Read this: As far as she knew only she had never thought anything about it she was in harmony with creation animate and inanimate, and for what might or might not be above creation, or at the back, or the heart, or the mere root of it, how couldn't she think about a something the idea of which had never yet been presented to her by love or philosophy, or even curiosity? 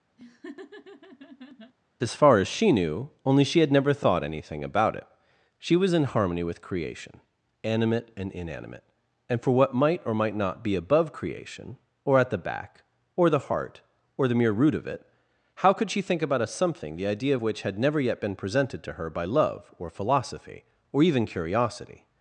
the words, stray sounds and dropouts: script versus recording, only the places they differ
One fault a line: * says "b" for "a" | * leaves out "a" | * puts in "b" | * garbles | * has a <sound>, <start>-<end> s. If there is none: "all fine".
* has a laugh, 0.2-1.7 s
* says "could" for "couldn't"